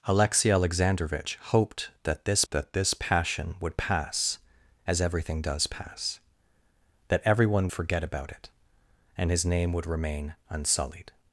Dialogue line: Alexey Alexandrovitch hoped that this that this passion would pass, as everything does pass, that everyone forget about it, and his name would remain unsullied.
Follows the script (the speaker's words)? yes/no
yes